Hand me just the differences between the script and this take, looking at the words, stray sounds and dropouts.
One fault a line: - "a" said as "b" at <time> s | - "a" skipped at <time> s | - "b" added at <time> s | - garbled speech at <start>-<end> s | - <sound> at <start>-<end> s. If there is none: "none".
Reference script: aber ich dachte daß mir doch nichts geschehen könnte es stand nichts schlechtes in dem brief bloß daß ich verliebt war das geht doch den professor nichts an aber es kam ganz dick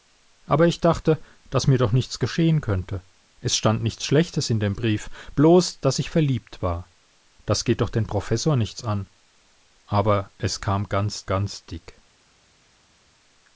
- "ganz" added at 11.2 s